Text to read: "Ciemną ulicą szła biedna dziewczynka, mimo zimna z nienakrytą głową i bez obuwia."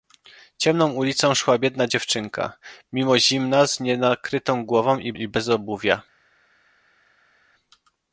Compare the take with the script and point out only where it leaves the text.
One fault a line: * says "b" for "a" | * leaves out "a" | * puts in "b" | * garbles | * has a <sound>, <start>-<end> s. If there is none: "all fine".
* puts in "i"